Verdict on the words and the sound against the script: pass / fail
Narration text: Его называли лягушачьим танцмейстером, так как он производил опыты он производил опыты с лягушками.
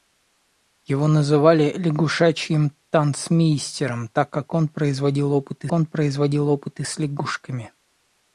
pass